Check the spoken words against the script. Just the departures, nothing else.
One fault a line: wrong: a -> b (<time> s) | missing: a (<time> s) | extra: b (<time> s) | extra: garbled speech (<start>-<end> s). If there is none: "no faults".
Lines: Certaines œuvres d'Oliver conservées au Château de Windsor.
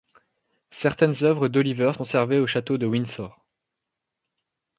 no faults